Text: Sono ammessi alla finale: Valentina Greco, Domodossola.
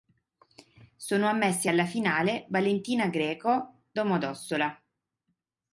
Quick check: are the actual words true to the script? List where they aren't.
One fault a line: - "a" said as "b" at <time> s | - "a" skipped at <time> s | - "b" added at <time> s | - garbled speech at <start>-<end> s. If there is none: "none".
none